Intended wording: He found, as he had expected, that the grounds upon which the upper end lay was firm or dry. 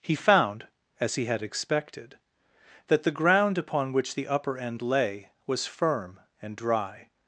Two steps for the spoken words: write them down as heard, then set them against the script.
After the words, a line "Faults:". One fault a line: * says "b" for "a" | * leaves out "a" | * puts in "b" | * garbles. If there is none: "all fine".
He found, as he had expected, that the ground upon which the upper end lay was firm and dry.
Faults:
* says "ground" for "grounds"
* says "and" for "or"